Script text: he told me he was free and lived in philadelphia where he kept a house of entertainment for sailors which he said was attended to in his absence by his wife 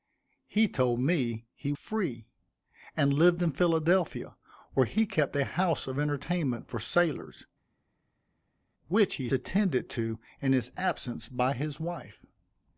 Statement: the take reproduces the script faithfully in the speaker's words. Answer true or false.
false